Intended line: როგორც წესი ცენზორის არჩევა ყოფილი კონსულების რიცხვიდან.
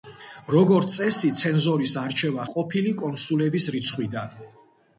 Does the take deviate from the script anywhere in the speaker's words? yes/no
no